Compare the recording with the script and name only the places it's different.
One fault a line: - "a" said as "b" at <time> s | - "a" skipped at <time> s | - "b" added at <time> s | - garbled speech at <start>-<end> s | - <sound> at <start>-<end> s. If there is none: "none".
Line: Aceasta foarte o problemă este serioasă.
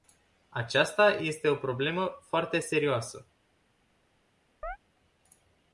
- "foarte" said as "este" at 1.1 s
- "este" said as "foarte" at 2.2 s
- chirp at 4.6-4.8 s